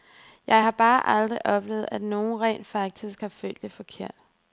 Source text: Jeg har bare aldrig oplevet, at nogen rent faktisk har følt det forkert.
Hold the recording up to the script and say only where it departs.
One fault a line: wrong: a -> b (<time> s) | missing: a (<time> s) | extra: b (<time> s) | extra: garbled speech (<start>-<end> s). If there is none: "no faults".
no faults